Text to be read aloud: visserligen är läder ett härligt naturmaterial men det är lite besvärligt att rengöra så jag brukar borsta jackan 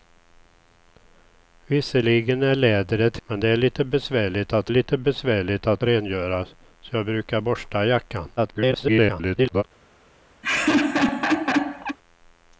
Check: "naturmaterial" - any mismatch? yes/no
yes